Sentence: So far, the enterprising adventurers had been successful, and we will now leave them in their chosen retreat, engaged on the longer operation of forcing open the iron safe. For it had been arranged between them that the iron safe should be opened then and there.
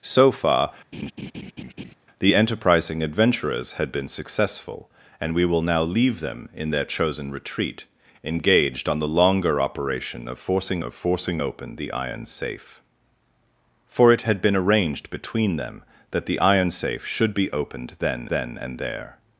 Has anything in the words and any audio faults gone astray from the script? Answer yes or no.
yes